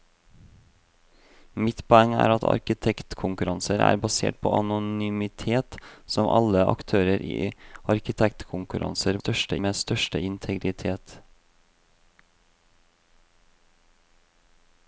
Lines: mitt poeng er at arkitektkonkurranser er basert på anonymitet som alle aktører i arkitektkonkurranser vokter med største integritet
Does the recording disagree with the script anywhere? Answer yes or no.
yes